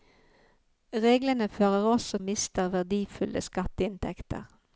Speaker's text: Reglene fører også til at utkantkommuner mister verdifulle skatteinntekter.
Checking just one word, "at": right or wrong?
wrong